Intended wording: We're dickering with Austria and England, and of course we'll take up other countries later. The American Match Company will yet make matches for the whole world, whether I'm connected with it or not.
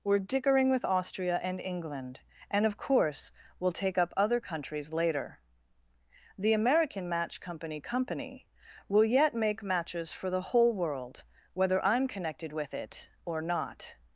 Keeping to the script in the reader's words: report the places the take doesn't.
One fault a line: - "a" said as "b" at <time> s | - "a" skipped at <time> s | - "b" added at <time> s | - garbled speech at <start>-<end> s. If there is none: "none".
- "Company" added at 7.8 s